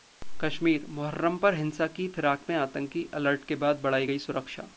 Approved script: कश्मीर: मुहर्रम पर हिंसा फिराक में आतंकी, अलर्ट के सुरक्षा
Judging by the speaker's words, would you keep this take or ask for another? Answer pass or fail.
fail